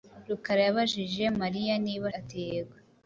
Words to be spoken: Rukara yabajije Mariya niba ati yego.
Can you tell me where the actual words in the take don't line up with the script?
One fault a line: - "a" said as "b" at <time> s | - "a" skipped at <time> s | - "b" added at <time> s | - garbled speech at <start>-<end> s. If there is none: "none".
none